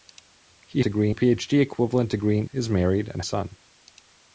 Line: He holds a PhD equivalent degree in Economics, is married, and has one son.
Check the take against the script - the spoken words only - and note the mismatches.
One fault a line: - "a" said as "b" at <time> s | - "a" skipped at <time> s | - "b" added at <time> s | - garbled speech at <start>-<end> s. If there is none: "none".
- "holds" said as "degree" at 0.8 s
- "Economics" skipped at 2.5 s
- "has one" skipped at 3.2 s